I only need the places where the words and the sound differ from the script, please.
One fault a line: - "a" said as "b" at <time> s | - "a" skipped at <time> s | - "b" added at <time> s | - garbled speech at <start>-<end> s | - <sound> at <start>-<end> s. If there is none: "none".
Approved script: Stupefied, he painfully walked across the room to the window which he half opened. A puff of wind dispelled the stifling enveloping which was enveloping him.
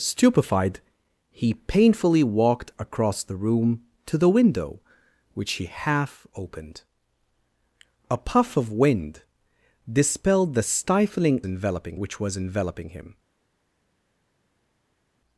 none